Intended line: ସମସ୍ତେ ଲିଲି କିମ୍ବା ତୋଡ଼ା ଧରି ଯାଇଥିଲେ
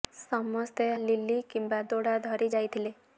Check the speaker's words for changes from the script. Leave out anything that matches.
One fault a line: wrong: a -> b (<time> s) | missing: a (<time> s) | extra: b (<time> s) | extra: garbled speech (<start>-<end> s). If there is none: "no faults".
no faults